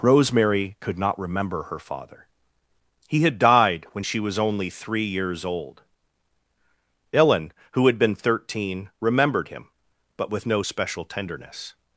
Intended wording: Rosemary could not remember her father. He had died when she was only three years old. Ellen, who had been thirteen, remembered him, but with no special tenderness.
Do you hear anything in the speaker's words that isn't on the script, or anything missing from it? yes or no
no